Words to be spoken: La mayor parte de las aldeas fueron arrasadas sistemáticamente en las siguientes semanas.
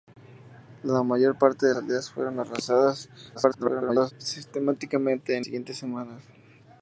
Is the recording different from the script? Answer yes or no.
yes